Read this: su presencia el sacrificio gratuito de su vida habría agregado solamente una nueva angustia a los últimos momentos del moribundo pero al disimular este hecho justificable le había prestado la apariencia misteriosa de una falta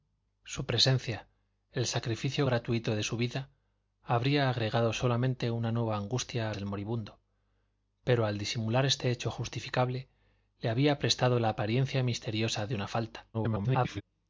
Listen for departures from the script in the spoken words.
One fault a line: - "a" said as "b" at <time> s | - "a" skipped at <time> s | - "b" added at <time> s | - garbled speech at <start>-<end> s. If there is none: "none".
- "los últimos momentos" skipped at 6.5 s
- garbled speech at 13.3-14.0 s